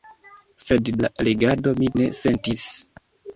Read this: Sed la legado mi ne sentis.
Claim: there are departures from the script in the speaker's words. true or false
false